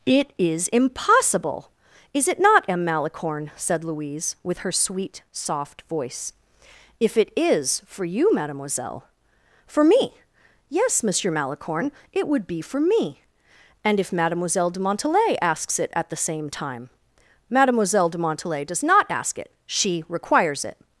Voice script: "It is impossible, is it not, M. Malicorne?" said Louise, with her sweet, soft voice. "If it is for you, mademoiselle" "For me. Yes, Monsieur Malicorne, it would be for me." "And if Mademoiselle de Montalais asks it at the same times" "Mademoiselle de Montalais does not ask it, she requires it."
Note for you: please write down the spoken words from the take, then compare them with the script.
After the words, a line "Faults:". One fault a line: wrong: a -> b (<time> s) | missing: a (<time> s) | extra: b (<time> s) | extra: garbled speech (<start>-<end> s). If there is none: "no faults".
"It is impossible, is it not, M. Malicorne?" said Louise, with her sweet, soft voice. "If it is for you, mademoiselle" "For me. Yes, Monsieur Malicorne, it would be for me." "And if Mademoiselle de Montalais asks it at the same time" "Mademoiselle de Montalais does not ask it, she requires it."
Faults:
wrong: times -> time (16.5 s)